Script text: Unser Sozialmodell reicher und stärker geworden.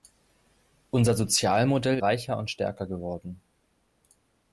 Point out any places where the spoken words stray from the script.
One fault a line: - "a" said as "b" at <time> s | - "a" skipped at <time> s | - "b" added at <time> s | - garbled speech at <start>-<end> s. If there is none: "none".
none